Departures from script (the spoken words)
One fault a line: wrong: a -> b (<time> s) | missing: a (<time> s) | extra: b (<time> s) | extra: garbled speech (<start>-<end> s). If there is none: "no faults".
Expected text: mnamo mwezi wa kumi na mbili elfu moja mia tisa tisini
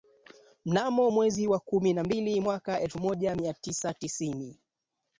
extra: mwaka (2.4 s)